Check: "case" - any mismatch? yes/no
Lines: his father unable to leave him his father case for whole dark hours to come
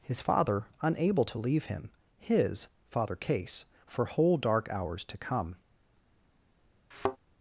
no